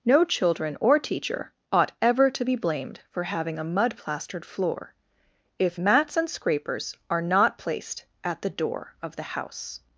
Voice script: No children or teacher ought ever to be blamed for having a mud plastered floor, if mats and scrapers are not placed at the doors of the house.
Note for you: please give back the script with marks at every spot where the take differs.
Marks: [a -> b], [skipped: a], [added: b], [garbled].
No children or teacher ought ever to be blamed for having a mud plastered floor, if mats and scrapers are not placed at the [doors -> door] of the house.